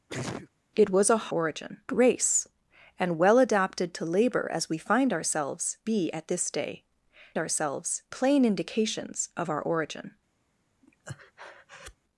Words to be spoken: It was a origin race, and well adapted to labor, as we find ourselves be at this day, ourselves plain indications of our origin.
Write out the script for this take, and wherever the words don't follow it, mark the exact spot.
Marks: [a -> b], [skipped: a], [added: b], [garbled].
It was a origin race, and well adapted to labor, as we find ourselves be at this day, ourselves plain indications of our origin.